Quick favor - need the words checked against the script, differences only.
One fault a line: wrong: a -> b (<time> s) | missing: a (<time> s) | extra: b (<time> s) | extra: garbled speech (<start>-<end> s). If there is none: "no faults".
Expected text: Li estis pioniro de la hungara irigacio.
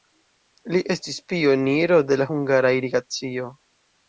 no faults